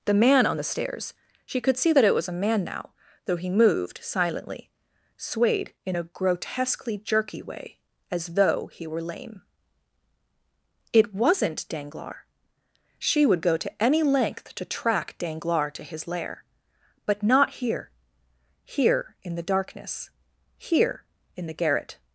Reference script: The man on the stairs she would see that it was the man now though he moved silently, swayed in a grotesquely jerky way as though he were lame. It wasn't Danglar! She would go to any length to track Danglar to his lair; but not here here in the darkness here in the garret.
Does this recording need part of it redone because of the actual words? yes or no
yes